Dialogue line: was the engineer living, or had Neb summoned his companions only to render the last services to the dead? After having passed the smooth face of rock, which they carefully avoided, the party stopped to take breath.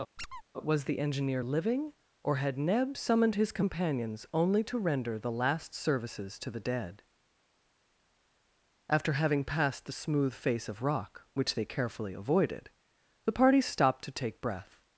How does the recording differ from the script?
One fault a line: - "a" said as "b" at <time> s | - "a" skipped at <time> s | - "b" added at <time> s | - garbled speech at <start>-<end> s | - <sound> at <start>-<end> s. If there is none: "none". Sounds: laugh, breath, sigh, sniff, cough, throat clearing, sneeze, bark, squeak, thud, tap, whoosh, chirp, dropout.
- squeak at 0.2-0.4 s